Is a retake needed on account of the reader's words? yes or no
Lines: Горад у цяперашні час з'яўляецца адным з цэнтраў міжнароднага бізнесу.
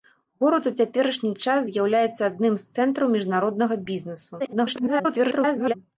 yes